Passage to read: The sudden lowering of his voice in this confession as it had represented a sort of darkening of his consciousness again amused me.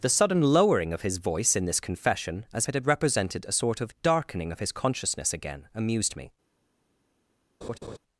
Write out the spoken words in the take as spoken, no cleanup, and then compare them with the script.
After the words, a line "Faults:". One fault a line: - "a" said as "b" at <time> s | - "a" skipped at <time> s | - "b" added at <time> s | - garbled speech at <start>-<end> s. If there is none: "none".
The sudden lowering of his voice in this confession as it had represented a sort of darkening of his consciousness again amused me.
Faults:
none